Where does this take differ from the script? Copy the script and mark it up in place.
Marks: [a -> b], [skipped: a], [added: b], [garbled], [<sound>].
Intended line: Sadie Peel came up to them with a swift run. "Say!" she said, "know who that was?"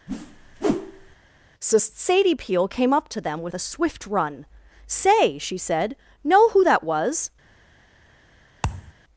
[whoosh] [added: so] Sadie Peel came up to them with a swift run. "Say!" she said, "know who that was?" [thud]